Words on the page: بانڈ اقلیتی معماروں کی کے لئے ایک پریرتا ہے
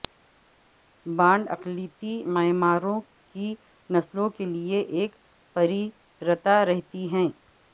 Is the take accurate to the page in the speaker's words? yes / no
no